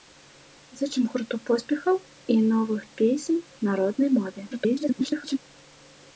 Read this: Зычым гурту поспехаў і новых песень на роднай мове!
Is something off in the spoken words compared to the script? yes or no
yes